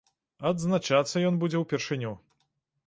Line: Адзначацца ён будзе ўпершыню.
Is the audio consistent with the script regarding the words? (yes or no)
yes